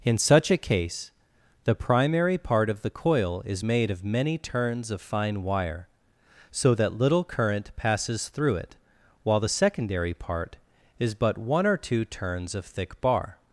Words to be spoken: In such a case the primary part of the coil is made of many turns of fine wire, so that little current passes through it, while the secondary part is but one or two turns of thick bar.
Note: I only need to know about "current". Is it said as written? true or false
true